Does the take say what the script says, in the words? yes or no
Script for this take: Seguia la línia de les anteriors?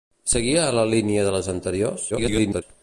no